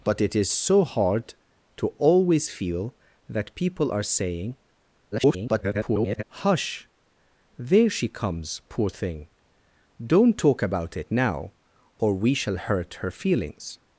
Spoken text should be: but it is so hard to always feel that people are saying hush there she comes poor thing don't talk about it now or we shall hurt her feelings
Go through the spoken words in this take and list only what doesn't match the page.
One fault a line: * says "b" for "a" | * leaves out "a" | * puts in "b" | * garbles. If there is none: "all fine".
* garbles